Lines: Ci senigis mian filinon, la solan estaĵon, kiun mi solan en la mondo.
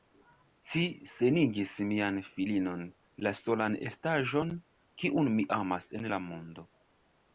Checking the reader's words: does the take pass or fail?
fail